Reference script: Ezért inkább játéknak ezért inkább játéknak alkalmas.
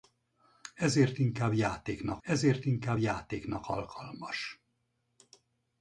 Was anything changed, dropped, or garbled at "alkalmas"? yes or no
no